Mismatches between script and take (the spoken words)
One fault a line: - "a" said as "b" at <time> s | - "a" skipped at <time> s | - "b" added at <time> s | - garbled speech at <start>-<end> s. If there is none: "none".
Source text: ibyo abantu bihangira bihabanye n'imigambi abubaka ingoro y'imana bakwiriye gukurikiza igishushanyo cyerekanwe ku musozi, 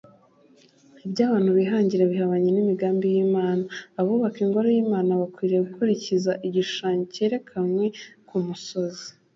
- "y'imana" added at 3.1 s